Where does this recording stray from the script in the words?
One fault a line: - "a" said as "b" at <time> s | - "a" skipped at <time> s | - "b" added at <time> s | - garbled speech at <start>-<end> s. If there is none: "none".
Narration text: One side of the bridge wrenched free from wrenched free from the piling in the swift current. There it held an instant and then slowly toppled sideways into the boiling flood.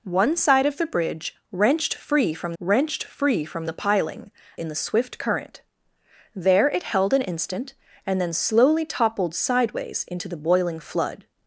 none